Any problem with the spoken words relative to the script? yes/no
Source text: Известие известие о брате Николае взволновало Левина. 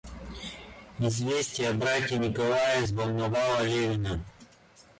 yes